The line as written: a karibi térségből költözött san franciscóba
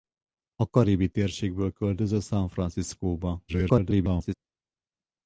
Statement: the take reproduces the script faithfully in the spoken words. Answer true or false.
false